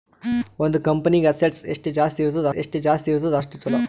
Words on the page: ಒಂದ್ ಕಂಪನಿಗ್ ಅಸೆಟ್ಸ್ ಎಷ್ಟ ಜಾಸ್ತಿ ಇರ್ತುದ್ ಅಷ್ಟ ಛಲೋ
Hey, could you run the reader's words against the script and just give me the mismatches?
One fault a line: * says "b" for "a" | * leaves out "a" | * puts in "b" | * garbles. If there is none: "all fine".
* puts in "ಎಷ್ಟ ಜಾಸ್ತಿ ಇರ್ತುದ್"